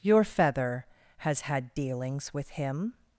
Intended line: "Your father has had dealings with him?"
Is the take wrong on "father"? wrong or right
wrong